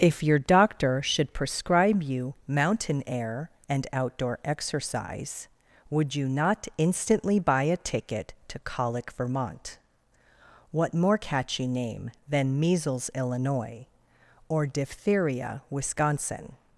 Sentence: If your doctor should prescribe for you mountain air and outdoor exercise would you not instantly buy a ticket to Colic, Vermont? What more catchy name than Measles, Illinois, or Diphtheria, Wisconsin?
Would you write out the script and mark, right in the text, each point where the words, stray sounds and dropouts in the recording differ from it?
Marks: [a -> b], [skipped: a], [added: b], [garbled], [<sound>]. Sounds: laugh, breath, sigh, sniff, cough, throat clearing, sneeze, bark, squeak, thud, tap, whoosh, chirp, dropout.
If your doctor should prescribe [skipped: for] you mountain air and outdoor exercise would you not instantly buy a ticket to Colic, Vermont? What more catchy name than Measles, Illinois, or Diphtheria, Wisconsin?